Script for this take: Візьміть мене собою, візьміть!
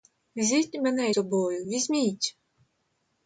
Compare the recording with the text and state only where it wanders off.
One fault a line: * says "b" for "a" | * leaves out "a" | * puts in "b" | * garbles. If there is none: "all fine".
all fine